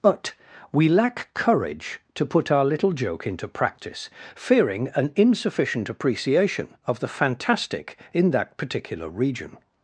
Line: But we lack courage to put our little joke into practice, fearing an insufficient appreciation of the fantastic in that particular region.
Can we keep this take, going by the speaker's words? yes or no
yes